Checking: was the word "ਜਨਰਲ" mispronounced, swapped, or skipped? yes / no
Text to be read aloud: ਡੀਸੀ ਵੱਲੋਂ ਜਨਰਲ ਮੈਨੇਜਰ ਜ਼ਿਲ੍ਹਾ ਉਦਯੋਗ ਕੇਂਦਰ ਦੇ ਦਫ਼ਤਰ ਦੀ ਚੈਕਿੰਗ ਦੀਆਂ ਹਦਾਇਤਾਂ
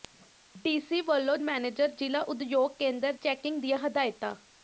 yes